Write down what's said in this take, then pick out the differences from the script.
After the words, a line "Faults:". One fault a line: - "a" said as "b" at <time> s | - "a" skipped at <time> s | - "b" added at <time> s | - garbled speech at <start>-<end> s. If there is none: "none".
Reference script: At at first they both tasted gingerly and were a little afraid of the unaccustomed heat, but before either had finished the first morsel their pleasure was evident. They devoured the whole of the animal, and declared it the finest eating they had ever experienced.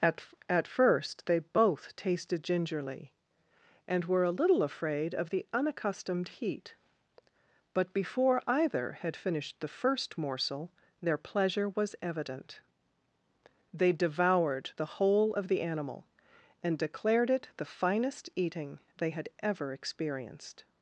At at first they both tasted gingerly and were a little afraid of the unaccustomed heat, but before either had finished the first morsel their pleasure was evident. They devoured the whole of the animal, and declared it the finest eating they had ever experienced.
Faults:
none